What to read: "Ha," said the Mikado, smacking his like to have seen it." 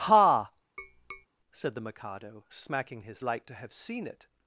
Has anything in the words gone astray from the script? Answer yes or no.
no